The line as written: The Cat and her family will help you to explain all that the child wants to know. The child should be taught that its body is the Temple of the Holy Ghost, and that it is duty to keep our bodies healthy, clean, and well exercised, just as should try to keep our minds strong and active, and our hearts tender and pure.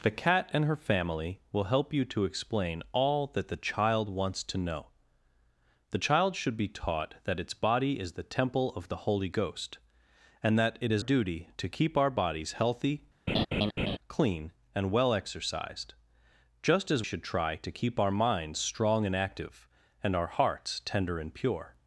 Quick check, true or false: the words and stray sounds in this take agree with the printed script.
false